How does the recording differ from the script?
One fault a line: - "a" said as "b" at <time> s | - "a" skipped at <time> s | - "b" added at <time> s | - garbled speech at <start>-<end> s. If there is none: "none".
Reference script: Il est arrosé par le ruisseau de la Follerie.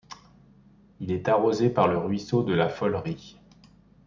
none